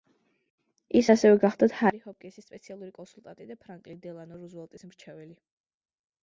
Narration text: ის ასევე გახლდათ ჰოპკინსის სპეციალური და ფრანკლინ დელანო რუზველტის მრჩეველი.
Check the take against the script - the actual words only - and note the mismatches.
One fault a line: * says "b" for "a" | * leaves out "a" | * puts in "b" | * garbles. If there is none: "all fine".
* puts in "ჰარი"
* puts in "კონსულტანტი"